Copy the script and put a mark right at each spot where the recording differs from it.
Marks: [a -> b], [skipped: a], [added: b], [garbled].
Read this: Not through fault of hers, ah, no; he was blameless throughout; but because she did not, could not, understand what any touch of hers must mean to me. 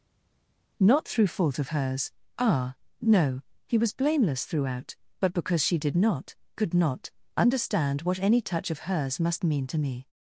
Not through fault of hers, ah, no; he was blameless throughout; but because she did not, could not, understand what any touch of hers must mean to me.